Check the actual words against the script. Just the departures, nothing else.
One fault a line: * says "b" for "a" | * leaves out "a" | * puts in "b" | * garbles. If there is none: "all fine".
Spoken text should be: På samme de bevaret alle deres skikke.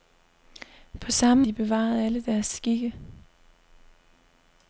all fine